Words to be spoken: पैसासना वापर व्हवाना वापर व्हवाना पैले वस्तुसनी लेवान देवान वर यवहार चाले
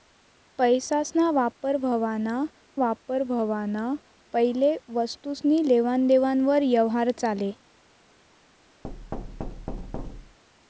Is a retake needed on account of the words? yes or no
no